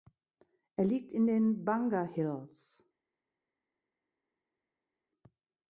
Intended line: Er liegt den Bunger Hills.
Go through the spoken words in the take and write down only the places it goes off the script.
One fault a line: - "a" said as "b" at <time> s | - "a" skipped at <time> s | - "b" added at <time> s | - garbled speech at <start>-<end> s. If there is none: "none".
- "in" added at 1.1 s